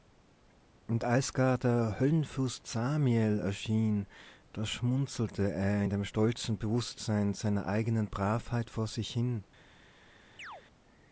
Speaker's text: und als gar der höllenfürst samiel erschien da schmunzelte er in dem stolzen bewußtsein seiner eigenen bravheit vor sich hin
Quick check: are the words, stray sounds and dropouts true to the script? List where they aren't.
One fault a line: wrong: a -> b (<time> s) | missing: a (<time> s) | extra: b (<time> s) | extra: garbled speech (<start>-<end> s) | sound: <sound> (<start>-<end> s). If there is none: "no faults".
sound: chirp (10.4-10.6 s)